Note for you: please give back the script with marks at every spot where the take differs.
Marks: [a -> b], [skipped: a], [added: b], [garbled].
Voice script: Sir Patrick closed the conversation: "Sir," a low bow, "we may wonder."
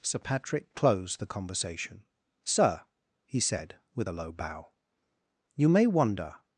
Sir Patrick closed the conversation: "Sir," [added: he said with] a low bow, ["we -> you] may wonder."